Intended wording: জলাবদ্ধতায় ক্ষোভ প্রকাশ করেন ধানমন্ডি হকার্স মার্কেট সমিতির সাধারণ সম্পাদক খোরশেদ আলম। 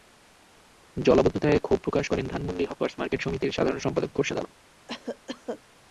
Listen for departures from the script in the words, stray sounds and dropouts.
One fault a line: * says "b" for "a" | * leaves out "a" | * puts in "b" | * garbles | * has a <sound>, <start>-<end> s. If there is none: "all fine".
* has a cough, 4.9-5.6 s